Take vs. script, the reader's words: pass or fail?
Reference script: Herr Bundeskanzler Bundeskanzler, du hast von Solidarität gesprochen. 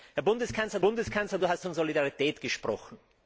pass